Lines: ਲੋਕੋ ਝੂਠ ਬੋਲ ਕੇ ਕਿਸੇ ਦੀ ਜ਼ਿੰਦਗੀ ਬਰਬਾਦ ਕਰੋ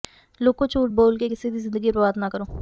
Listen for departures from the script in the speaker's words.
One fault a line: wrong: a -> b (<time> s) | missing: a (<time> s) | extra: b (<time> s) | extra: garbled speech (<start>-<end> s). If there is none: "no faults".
extra: ਨਾ (2.2 s)